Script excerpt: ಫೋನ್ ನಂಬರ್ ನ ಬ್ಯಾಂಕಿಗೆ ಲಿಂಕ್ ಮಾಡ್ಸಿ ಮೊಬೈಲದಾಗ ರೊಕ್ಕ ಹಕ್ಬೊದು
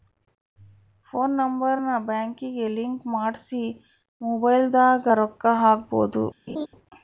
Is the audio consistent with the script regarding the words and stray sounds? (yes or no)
no